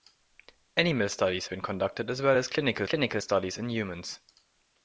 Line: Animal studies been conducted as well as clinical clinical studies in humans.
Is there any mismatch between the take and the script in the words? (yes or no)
no